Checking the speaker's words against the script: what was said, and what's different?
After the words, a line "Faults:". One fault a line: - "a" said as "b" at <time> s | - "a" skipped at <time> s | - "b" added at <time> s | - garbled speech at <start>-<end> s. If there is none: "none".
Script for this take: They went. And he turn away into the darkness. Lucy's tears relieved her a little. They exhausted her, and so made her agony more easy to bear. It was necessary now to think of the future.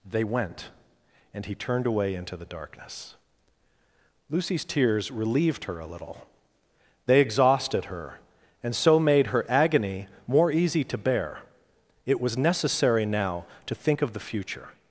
They went. And he turned away into the darkness. Lucy's tears relieved her a little. They exhausted her, and so made her agony more easy to bear. It was necessary now to think of the future.
Faults:
- "turn" said as "turned" at 1.6 s